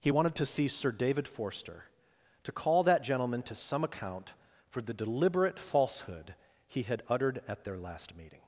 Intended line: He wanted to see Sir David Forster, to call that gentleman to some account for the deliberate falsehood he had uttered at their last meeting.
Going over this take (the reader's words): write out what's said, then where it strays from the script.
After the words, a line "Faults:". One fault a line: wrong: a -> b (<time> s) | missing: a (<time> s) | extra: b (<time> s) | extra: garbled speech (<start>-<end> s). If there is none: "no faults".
He wanted to see Sir David Forster, to call that gentleman to some account for the deliberate falsehood he had uttered at their last meeting.
Faults:
no faults